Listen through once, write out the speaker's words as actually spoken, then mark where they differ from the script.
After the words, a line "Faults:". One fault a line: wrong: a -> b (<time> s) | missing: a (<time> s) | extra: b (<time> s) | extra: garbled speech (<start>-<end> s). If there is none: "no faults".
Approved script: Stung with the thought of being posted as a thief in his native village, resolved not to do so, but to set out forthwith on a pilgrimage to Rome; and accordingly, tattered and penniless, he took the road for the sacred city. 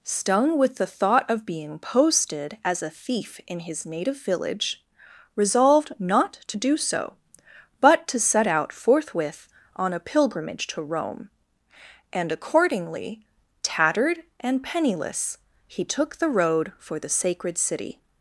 Stung with the thought of being posted as a thief in his native village, resolved not to do so, but to set out forthwith on a pilgrimage to Rome; and accordingly, tattered and penniless, he took the road for the sacred city.
Faults:
no faults